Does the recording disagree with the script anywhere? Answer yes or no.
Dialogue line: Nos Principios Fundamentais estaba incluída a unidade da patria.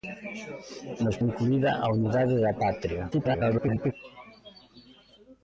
yes